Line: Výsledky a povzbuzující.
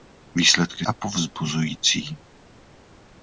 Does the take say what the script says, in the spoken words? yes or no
yes